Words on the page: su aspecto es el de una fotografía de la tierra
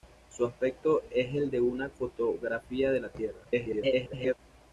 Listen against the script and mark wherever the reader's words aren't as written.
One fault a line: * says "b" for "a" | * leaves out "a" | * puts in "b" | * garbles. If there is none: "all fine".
* garbles